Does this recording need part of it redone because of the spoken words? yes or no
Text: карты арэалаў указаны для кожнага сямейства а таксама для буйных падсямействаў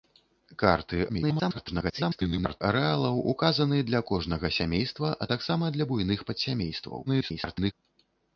yes